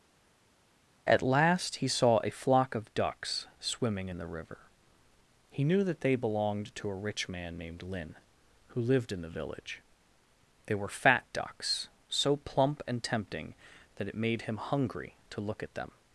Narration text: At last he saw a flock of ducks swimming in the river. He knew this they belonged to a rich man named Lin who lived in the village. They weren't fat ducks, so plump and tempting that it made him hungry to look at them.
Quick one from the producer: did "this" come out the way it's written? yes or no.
no